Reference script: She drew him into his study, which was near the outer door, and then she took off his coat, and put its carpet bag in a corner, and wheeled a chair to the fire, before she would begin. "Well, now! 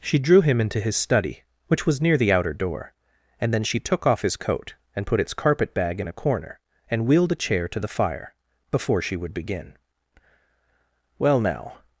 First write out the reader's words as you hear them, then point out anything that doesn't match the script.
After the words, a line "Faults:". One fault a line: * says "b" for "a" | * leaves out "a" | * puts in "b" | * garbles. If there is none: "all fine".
She drew him into his study, which was near the outer door, and then she took off his coat, and put its carpet bag in a corner, and wheeled a chair to the fire, before she would begin. "Well, now!
Faults:
all fine